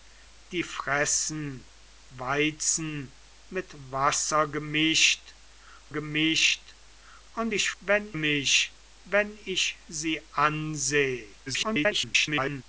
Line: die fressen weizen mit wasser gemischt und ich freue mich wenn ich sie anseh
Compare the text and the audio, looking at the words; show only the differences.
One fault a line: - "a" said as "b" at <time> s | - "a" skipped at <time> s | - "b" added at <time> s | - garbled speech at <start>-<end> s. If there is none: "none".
- "gemischt" added at 5.9 s
- "freue" said as "wenn" at 7.8 s
- garbled speech at 11.5-12.6 s